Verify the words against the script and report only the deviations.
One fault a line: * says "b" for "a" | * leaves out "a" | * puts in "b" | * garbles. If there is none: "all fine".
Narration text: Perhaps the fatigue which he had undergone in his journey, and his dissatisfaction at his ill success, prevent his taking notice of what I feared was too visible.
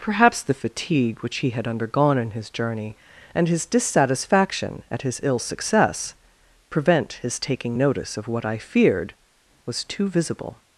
all fine